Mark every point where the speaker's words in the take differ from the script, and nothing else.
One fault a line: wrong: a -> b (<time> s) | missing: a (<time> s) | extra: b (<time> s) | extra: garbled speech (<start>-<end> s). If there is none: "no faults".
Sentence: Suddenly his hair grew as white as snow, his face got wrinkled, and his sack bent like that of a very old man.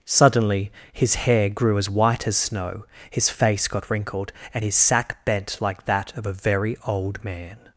no faults